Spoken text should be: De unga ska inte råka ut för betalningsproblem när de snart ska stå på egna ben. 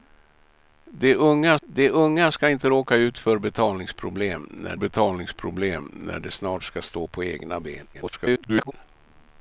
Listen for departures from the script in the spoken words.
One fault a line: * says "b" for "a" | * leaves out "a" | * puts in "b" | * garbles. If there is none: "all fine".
* puts in "de unga"
* puts in "betalningsproblem när"
* garbles